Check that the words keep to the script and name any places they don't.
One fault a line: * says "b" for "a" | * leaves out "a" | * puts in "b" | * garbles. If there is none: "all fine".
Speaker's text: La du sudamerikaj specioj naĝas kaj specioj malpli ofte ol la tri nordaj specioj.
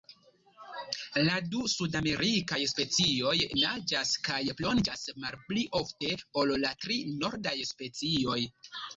* says "plonĝas" for "specioj"